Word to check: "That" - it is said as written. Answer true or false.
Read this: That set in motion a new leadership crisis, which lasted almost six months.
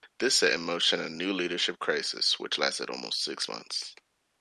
false